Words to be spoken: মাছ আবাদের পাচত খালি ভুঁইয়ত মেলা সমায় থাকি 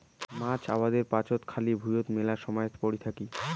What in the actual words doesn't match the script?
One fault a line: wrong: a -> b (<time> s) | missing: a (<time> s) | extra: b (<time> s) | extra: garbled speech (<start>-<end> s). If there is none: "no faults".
extra: পরি (2.8 s)